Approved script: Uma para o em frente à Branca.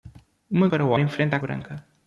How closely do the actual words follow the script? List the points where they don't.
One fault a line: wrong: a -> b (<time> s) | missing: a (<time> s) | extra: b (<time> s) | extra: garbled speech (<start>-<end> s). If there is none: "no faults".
no faults